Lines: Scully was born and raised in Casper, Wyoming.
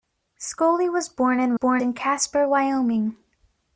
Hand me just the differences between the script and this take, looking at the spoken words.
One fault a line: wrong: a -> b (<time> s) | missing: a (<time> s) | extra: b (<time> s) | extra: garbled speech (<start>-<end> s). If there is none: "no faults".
wrong: raised -> born (1.5 s)